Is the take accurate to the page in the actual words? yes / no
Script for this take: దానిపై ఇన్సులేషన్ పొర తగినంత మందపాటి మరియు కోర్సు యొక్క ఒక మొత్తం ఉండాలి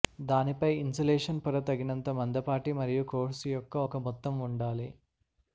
yes